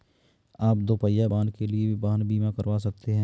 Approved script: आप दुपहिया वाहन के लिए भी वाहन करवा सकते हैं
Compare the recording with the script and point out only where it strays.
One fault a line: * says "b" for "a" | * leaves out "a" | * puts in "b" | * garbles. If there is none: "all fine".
* puts in "बीमा"